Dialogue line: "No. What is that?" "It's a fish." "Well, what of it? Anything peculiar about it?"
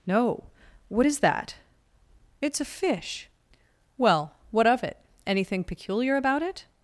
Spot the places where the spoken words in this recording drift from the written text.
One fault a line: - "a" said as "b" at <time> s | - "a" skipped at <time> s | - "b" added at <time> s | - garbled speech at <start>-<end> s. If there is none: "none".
none